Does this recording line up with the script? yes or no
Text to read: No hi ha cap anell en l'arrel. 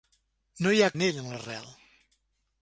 no